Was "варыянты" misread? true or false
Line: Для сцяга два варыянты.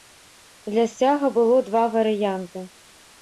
false